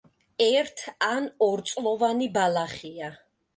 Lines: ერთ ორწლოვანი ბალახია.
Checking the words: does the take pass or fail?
fail